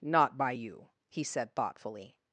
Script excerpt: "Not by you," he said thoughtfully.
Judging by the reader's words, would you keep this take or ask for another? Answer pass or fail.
pass